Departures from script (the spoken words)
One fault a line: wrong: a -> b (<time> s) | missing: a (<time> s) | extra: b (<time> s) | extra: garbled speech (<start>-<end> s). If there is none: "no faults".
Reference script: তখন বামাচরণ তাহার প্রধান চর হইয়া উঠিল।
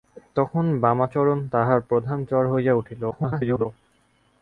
extra: garbled speech (3.1-3.7 s)